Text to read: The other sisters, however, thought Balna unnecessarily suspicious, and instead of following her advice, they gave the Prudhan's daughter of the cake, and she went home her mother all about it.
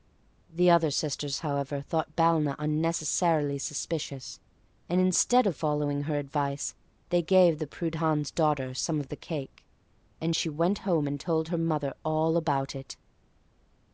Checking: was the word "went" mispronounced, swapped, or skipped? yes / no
no